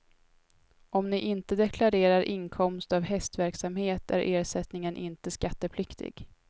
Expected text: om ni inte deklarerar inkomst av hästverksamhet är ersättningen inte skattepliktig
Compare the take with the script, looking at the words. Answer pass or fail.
pass